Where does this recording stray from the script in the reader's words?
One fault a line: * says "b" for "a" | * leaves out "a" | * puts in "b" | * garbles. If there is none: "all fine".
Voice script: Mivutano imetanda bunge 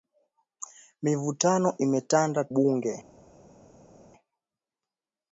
all fine